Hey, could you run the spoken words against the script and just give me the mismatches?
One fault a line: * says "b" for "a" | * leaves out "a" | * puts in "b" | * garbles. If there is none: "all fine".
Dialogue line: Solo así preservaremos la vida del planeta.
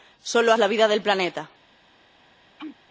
* leaves out "así preservaremos"